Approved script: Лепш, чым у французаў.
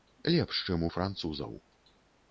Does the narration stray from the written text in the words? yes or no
no